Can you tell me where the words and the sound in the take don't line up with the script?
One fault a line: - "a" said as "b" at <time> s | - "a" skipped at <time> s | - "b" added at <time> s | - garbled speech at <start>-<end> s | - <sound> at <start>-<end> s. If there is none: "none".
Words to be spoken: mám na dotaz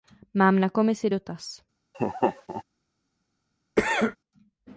- "komisi" added at 0.7 s
- laugh at 1.9-2.6 s
- cough at 3.8-4.2 s